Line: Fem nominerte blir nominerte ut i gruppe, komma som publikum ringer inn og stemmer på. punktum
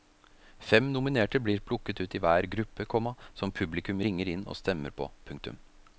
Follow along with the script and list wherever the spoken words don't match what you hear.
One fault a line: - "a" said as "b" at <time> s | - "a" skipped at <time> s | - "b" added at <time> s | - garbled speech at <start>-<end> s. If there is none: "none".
- "nominerte" said as "plukket" at 1.6 s
- "hver" added at 2.2 s